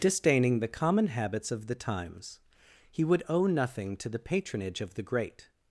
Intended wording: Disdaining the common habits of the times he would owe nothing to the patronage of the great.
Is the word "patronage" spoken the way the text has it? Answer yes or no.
yes